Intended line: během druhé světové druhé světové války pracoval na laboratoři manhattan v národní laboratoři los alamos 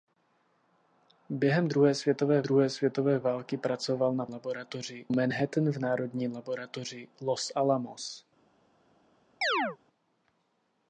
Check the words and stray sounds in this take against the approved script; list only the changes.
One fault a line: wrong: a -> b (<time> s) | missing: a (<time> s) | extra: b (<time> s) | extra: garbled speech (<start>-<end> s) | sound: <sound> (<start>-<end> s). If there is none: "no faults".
sound: chirp (9.4-9.8 s)